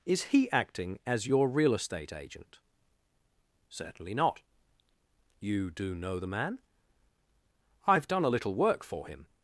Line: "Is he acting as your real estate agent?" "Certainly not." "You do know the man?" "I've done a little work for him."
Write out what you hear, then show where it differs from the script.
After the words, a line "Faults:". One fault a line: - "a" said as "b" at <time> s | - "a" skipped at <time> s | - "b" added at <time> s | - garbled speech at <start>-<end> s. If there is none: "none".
"Is he acting as your real estate agent?" "Certainly not." "You do know the man?" "I've done a little work for him."
Faults:
none